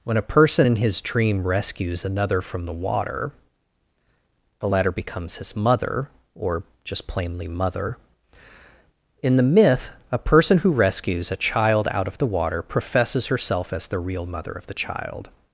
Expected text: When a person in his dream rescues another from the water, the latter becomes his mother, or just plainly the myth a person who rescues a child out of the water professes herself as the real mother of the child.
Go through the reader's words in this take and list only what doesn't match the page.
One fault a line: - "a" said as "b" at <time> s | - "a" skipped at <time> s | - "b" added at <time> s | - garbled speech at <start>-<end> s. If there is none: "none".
- "mother in" added at 7.5 s